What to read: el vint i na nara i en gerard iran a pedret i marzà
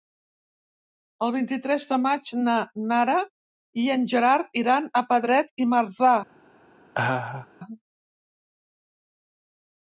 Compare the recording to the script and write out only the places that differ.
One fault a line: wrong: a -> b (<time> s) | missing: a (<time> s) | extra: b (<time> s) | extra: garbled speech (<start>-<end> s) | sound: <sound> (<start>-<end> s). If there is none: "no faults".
extra: tres de maig (1.6 s)
sound: laugh (6.9-7.5 s)